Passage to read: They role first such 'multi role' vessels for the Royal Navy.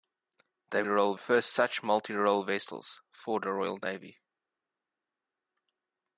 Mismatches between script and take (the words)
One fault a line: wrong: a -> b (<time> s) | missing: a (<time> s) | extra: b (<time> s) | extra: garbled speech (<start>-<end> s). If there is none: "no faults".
no faults